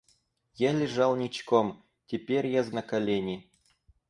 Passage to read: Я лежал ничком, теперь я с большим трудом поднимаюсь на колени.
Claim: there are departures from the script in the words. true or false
true